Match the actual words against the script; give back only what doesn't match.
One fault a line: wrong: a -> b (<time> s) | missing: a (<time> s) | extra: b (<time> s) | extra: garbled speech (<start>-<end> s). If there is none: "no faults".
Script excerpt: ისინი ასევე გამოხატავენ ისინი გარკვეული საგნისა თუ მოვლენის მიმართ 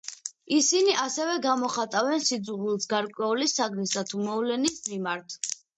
wrong: ისინი -> სიძულვილს (2.3 s)